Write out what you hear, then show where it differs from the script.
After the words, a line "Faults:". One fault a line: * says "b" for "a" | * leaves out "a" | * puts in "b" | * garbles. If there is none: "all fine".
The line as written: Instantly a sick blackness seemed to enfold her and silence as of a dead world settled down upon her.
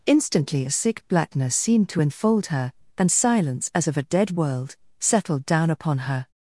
Instantly a sick blackness seemed to enfold her and silence as of a dead world settled down upon her.
Faults:
all fine